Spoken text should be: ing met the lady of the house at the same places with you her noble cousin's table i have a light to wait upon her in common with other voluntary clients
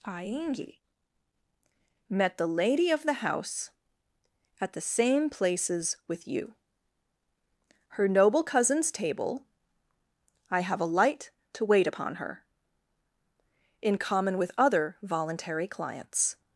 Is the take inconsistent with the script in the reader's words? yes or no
no